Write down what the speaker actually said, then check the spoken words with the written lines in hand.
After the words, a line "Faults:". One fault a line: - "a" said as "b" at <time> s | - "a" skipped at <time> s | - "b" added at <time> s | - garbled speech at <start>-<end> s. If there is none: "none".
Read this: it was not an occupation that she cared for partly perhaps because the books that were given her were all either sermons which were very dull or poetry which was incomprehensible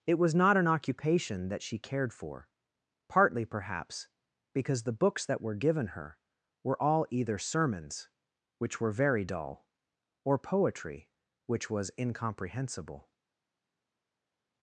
it was not an occupation that she cared for partly perhaps because the books that were given her were all either sermons which were very dull or poetry which was incomprehensible
Faults:
none